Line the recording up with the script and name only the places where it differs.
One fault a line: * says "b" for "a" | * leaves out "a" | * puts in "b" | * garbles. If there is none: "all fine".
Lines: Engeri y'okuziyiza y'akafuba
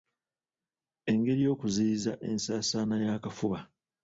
* puts in "ensaasaana"